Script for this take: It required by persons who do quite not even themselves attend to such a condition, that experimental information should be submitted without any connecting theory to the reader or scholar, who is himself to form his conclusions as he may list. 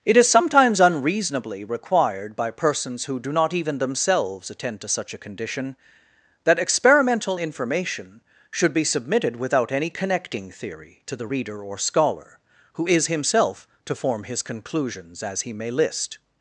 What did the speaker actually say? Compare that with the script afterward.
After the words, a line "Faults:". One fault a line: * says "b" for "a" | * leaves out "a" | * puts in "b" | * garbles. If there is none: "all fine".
It is sometimes unreasonably required by persons who do not even themselves attend to such a condition, that experimental information should be submitted without any connecting theory to the reader or scholar, who is himself to form his conclusions as he may list.
Faults:
* puts in "is sometimes unreasonably"
* leaves out "quite"